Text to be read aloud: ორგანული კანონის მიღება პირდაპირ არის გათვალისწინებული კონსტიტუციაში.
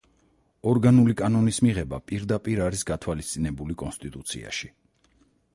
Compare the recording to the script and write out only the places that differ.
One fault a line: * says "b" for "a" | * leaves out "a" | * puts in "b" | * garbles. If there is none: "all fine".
all fine